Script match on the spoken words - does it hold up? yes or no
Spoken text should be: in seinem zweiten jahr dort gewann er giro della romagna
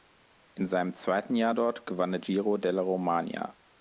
yes